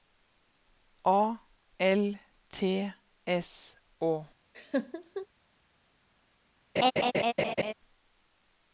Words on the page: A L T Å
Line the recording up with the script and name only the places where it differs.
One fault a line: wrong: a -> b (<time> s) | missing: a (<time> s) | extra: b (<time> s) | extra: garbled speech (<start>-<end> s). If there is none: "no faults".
extra: S (3.3 s)